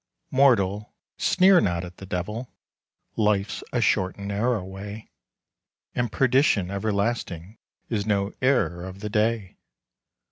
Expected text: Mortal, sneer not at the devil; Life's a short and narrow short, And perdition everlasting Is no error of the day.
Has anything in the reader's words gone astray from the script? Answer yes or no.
yes